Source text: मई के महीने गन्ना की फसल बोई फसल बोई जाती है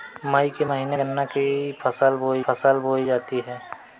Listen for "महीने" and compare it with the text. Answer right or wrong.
right